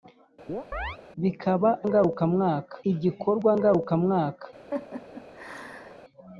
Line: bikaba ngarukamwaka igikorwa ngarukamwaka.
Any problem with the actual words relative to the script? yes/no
no